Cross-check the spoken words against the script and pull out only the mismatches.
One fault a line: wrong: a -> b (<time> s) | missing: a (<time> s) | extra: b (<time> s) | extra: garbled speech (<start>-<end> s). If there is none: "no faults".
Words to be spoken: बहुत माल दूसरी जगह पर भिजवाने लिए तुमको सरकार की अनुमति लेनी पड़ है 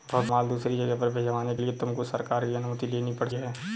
no faults